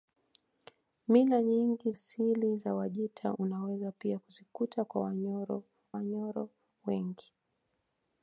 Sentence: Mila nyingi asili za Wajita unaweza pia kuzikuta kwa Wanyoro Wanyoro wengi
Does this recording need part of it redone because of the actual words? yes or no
no